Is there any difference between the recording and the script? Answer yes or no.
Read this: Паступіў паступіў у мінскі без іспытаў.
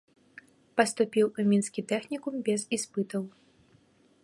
yes